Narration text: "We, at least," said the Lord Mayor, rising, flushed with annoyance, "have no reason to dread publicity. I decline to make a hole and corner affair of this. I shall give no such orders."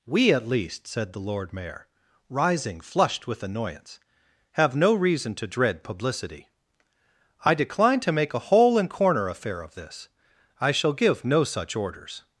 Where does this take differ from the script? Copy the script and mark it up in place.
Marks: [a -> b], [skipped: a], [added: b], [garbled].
"We, at least," said the Lord Mayor, rising, flushed with annoyance, "have no reason to dread publicity. I decline to make a hole and corner affair of this. I shall give no such orders."